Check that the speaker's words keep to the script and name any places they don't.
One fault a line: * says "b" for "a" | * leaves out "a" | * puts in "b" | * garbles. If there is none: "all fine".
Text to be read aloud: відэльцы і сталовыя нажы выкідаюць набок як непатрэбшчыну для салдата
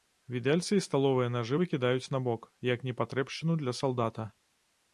all fine